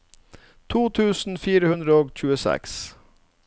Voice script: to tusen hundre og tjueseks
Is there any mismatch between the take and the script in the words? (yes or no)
yes